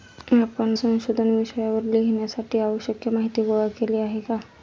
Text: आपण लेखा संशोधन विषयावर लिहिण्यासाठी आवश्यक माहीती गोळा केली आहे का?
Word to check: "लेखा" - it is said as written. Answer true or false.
false